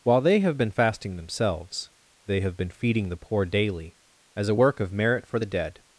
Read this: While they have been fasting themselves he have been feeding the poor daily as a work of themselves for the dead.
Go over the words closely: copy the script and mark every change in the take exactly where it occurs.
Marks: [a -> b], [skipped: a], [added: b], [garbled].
While they have been fasting themselves [he -> they] have been feeding the poor daily as a work of [themselves -> merit] for the dead.